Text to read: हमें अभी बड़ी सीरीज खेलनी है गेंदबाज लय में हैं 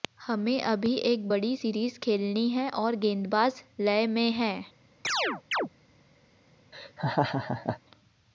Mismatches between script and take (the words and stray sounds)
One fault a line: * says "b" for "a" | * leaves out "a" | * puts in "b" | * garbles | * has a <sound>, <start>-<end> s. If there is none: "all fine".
* puts in "एक"
* puts in "और"
* has a chirp, 5.0-5.7 s
* has a laugh, 6.7-7.8 s